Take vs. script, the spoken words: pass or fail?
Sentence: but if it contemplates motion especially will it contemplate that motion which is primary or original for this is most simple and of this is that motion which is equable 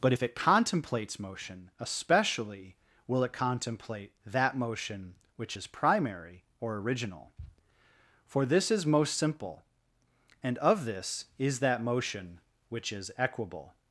pass